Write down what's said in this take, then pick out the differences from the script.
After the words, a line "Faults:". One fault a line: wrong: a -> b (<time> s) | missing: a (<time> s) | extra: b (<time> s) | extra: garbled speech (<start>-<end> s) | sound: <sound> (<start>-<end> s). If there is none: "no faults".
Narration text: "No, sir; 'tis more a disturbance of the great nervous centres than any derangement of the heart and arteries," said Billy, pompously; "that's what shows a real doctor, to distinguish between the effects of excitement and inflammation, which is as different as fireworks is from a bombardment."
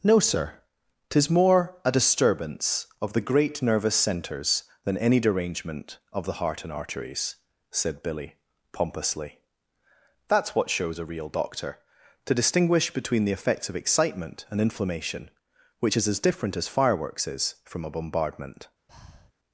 "No, sir; 'tis more a disturbance of the great nervous centres than any derangement of the heart and arteries," said Billy, pompously; "that's what shows a real doctor, to distinguish between the effects of excitement and inflammation, which is as different as fireworks is from a bombardment."
Faults:
sound: breath (18.9-19.3 s)